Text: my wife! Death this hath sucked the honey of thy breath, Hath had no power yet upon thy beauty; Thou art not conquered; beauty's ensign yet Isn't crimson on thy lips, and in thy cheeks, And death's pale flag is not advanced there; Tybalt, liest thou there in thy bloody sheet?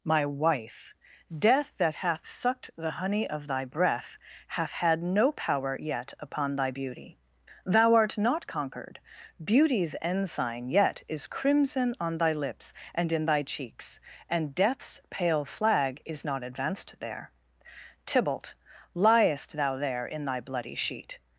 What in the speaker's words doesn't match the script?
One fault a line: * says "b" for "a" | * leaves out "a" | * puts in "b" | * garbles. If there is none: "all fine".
* says "that" for "this"
* says "Is" for "Isn't"